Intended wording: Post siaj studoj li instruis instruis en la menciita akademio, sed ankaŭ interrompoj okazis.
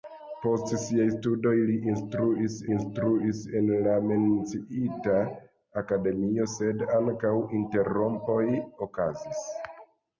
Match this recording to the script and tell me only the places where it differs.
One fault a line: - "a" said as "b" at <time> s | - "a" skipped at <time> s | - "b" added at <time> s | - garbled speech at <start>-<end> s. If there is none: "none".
none